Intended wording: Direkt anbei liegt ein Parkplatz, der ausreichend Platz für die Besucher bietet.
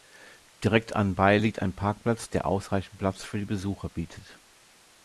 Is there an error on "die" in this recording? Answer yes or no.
no